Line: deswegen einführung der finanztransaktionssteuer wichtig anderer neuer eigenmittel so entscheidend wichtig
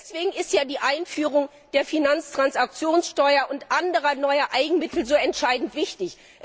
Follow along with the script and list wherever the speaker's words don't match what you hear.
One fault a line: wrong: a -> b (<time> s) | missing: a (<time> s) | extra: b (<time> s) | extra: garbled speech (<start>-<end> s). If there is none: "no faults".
extra: ist ja die (0.3 s)
wrong: wichtig -> und (3.5 s)